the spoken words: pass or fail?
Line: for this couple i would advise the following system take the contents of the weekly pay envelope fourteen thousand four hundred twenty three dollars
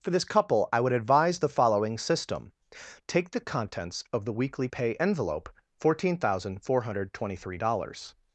pass